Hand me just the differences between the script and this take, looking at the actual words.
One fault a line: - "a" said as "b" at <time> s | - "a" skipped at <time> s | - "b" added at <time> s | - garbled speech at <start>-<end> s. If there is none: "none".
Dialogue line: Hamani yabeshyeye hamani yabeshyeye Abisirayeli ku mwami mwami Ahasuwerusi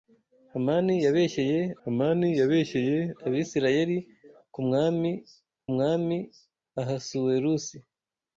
none